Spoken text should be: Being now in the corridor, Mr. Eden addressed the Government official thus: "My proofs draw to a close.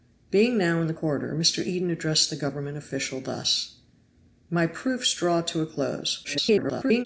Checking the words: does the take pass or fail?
fail